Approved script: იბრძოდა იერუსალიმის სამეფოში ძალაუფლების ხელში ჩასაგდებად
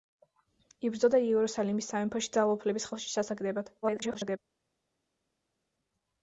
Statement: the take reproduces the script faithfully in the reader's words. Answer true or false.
false